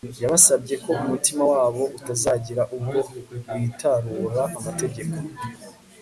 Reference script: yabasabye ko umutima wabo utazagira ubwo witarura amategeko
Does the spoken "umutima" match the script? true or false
true